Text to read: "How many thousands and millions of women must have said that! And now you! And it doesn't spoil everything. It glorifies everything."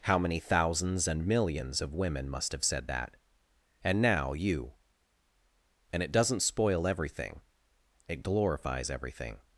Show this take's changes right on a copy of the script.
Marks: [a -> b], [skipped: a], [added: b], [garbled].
"How many thousands and millions of women must have said that! And now you! And it doesn't spoil everything. It glorifies everything."